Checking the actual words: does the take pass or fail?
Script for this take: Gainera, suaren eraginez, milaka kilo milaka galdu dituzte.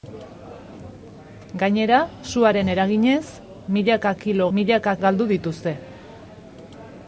pass